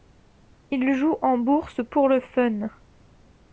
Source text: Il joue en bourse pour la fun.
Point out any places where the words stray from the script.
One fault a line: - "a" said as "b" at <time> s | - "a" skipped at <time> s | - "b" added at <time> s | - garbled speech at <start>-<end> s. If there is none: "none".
- "la" said as "le" at 2.1 s